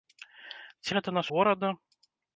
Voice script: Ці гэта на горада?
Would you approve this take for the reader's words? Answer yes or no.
yes